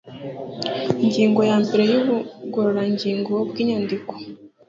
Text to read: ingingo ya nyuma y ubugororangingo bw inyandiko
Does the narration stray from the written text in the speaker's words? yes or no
yes